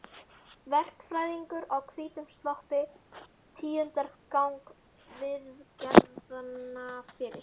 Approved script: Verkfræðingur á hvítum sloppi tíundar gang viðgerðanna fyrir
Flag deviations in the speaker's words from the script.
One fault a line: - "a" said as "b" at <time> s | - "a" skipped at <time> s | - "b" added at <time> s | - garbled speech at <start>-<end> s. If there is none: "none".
none